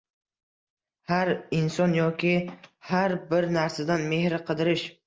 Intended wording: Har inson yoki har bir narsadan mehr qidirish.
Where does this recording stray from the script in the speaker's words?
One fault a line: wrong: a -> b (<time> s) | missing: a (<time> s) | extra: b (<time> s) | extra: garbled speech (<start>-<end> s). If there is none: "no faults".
no faults